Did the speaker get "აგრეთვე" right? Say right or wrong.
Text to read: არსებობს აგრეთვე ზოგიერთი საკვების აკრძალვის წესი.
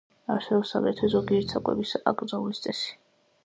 right